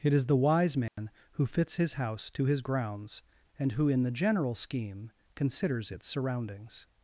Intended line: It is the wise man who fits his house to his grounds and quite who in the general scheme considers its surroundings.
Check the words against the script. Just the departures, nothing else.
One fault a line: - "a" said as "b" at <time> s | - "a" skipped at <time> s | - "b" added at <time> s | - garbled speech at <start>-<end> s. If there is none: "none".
- "quite" skipped at 3.7 s